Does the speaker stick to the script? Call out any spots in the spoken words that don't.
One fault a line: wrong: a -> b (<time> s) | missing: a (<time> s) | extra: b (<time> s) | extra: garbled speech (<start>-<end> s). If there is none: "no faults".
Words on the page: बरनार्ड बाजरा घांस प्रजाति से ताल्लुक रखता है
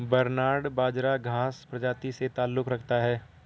no faults